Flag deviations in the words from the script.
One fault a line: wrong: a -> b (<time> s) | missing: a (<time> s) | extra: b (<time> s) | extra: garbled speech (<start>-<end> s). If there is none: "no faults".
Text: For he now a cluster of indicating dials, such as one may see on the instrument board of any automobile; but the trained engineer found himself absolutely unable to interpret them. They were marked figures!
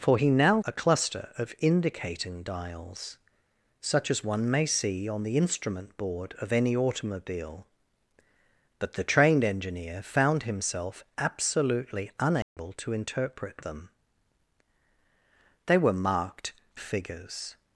no faults